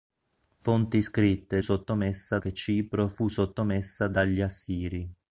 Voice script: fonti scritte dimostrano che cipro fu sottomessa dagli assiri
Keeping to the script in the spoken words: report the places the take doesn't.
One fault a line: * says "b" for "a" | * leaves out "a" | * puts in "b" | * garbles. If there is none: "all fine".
* says "sottomessa" for "dimostrano"